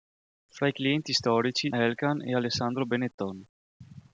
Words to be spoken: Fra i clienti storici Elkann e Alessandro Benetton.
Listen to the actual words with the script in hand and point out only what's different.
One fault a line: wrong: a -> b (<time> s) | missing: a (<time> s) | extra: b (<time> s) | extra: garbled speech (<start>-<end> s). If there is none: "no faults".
no faults